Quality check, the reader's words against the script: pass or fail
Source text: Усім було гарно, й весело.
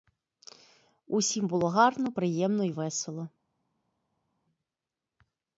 fail